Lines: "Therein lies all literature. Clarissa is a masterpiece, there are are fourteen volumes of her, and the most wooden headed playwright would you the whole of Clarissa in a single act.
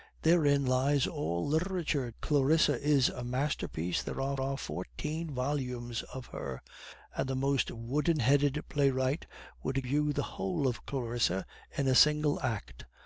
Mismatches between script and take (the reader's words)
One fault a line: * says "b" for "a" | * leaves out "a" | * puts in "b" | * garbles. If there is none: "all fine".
all fine